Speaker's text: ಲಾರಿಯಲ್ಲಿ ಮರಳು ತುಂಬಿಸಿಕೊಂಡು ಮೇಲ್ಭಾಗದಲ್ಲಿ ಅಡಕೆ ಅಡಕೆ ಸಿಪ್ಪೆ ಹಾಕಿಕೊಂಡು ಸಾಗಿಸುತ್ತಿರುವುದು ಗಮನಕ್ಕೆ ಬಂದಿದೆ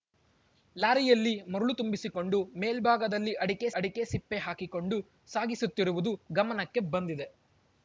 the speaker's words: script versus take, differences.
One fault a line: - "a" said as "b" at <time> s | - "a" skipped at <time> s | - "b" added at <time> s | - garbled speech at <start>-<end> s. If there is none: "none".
none